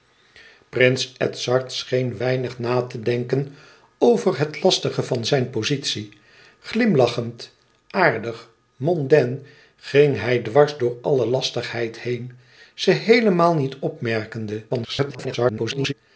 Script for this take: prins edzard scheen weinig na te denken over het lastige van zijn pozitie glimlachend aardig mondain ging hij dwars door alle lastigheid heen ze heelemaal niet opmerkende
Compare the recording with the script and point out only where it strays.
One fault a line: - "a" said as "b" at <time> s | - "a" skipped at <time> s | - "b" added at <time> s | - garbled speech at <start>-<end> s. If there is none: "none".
- garbled speech at 14.7-15.9 s